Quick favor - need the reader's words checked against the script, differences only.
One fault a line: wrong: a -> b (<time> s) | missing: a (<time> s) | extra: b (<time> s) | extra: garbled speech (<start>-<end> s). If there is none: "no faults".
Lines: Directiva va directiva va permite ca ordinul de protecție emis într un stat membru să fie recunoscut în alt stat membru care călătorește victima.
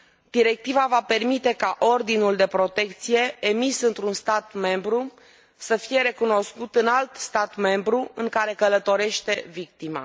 missing: directiva va (1.0 s)
extra: în (8.1 s)